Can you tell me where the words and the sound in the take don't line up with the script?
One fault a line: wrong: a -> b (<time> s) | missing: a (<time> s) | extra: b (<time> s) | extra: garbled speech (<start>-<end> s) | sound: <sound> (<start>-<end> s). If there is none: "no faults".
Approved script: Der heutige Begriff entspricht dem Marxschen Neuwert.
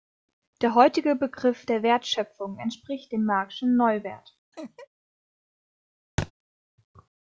extra: der Wertschöpfung (1.7 s)
sound: laugh (4.5-4.9 s)
sound: thud (6.2-6.3 s)